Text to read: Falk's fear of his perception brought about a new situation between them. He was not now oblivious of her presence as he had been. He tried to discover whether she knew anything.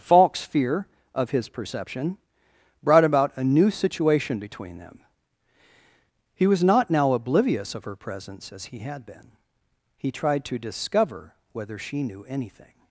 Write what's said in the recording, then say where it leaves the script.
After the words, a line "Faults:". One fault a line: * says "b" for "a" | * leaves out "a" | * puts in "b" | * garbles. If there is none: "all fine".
Falk's fear of his perception brought about a new situation between them. He was not now oblivious of her presence as he had been. He tried to discover whether she knew anything.
Faults:
all fine